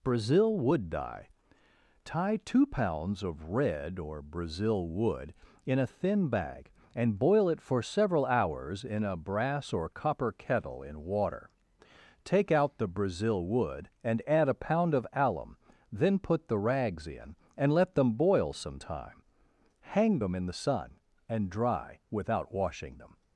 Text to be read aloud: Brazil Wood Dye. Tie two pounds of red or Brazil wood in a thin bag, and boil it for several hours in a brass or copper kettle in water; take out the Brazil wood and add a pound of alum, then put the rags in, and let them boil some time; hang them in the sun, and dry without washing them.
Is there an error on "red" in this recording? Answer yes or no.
no